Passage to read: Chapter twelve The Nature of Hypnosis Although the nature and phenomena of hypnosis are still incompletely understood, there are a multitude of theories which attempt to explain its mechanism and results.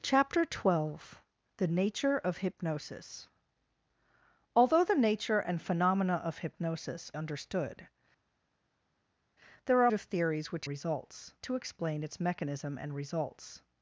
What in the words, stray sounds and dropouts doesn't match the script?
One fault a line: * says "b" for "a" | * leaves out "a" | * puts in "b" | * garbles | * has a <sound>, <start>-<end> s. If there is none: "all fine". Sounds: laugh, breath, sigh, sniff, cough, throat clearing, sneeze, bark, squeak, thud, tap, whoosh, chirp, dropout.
* leaves out "are still incompletely"
* leaves out "a multitude"
* says "results" for "attempt"